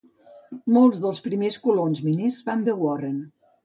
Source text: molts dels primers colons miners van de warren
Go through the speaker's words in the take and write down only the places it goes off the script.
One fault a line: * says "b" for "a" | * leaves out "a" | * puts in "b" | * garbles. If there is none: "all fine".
all fine